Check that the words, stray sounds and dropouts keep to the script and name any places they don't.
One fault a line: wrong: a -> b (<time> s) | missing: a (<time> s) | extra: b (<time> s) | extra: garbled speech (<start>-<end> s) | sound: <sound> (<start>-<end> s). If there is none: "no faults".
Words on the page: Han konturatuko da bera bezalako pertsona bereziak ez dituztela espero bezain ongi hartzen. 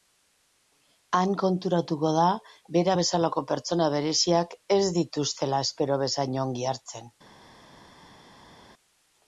no faults